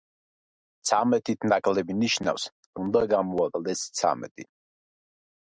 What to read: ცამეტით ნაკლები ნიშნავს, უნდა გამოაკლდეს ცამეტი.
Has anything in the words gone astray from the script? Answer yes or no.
no